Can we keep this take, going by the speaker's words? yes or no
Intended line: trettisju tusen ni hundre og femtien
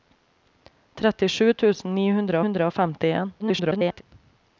no